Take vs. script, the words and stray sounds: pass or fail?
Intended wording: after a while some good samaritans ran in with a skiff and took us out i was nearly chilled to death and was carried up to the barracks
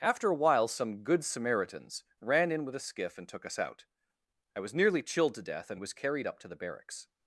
pass